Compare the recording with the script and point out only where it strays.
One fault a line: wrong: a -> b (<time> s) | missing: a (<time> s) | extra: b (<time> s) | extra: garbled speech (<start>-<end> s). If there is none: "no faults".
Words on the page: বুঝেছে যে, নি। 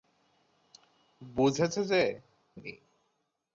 no faults